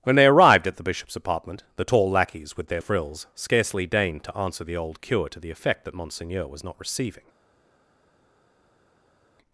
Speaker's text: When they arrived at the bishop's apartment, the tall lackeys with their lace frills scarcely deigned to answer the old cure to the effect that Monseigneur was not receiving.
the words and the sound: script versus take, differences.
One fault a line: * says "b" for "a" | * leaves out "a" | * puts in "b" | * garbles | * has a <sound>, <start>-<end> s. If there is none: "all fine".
* leaves out "lace"